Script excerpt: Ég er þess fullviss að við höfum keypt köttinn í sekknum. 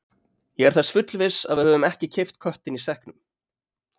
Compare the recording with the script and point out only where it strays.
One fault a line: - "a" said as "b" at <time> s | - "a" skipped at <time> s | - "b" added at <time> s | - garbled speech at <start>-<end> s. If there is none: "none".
- "ekki" added at 1.9 s